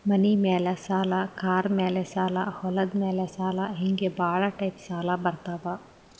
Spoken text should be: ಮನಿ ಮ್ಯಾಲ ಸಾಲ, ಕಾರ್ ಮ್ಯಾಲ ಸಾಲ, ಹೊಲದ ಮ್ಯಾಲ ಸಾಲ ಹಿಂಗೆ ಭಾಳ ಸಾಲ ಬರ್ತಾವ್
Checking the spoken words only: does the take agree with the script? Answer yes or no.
no